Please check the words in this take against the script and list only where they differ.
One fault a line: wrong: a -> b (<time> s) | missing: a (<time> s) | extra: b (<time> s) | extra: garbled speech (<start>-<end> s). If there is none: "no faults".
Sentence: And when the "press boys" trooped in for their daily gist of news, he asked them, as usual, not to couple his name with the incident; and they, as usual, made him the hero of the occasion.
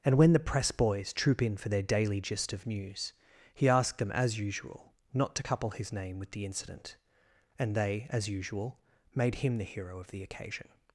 wrong: trooped -> troop (1.1 s)